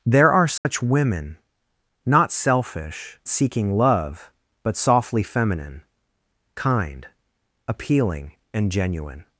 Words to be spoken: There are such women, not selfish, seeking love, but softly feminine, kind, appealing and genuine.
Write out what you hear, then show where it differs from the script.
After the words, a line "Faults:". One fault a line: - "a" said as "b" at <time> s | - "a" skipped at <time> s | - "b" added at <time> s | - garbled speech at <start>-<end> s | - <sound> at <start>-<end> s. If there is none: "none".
There are such women, not selfish, seeking love, but softly feminine, kind, appealing and genuine.
Faults:
- dropout at 0.6-0.7 s